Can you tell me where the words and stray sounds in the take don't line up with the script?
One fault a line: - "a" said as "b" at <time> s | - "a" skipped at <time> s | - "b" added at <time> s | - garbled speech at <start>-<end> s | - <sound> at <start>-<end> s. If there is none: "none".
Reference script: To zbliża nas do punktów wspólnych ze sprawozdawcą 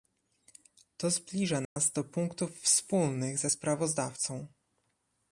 - dropout at 1.6-1.8 s